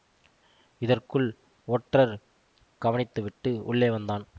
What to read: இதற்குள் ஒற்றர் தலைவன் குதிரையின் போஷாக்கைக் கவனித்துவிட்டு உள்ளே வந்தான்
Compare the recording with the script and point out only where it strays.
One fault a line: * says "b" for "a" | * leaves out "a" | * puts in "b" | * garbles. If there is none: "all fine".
* leaves out "தலைவன் குதிரையின் போஷாக்கைக்"